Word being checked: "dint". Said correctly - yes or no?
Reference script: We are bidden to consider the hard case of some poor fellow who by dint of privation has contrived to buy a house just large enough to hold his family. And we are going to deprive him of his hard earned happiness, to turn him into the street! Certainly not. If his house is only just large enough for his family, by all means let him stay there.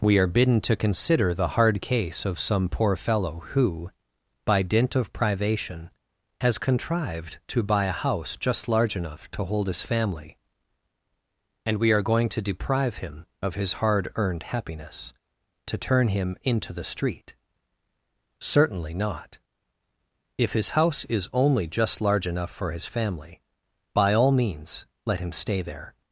yes